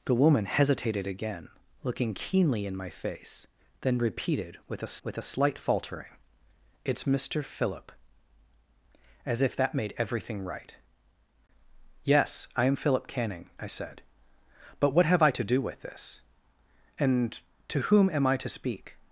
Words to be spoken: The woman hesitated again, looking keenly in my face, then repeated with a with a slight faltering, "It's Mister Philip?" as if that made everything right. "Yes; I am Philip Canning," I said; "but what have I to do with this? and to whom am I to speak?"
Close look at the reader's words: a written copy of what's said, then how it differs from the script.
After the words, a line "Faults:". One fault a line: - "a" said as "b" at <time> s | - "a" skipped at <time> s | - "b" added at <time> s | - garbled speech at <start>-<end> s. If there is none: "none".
The woman hesitated again, looking keenly in my face, then repeated with a with a slight faltering, "It's Mister Philip?" as if that made everything right. "Yes; I am Philip Canning," I said; "but what have I to do with this? and to whom am I to speak?"
Faults:
none